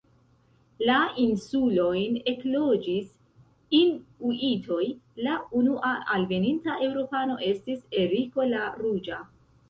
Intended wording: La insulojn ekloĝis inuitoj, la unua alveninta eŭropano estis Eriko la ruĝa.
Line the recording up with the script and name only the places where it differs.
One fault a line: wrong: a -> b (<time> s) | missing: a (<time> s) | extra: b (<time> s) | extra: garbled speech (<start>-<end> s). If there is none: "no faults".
no faults